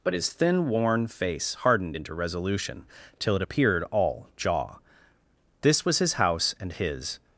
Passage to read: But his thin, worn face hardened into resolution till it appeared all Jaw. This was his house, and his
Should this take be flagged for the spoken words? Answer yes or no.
no